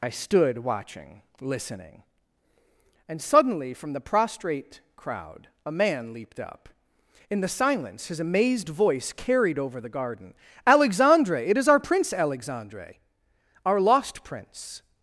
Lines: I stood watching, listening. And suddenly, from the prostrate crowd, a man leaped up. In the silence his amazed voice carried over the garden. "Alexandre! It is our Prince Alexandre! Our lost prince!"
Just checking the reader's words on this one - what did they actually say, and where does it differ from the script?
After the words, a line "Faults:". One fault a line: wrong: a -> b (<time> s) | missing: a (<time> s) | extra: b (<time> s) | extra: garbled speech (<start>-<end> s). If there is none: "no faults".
I stood watching, listening. And suddenly, from the prostrate crowd, a man leaped up. In the silence his amazed voice carried over the garden. "Alexandre! It is our Prince Alexandre! Our lost prince!"
Faults:
no faults